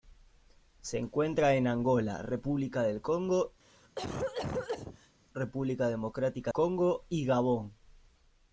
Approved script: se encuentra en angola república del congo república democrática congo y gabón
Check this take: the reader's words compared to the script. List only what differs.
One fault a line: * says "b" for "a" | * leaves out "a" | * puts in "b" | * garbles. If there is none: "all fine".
all fine